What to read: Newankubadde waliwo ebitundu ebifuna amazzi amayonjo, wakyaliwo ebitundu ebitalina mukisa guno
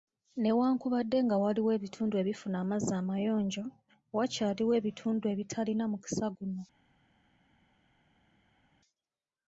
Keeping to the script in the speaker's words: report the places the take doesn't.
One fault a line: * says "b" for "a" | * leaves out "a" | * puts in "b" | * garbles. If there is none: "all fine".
* puts in "nga"